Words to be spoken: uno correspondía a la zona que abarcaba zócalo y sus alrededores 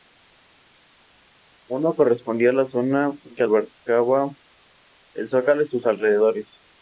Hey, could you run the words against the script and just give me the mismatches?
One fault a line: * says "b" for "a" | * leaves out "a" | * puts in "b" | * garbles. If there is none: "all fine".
* puts in "el"